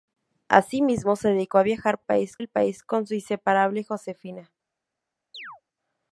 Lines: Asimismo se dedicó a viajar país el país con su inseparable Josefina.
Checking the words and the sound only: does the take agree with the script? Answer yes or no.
no